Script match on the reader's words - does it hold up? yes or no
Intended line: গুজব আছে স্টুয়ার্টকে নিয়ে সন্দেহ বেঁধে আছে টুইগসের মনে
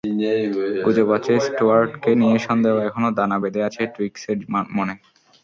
no